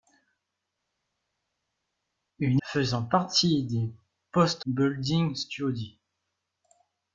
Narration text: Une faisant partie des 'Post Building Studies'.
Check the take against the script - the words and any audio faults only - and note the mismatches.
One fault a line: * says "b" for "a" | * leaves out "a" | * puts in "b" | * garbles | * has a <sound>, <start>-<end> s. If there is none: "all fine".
all fine